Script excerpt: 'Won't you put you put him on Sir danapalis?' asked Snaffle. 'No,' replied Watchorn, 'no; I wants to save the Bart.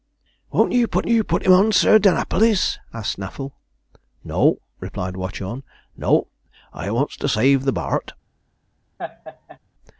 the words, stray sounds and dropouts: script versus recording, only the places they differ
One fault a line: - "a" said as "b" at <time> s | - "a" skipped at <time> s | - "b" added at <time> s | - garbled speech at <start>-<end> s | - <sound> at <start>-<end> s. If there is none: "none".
- laugh at 9.0-9.6 s